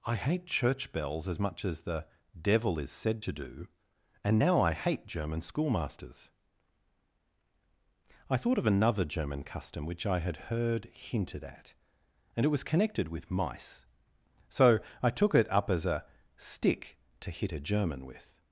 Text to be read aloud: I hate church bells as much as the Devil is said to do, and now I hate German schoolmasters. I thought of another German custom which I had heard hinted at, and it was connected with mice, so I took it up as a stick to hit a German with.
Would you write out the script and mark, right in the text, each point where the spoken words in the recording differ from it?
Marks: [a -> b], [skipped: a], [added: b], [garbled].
I hate church bells as much as the Devil is said to do, and now I hate German schoolmasters. I thought of another German custom which I had heard hinted at, and it was connected with mice, so I took it up as a stick to hit a German with.